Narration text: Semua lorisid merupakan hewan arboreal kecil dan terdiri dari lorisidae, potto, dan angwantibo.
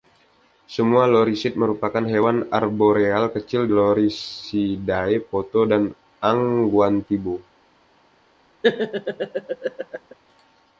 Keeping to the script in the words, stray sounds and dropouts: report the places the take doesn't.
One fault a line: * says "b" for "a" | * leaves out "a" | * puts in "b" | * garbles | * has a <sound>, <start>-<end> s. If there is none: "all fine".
* leaves out "dan terdiri dari"
* has a laugh, 8.6-10.1 s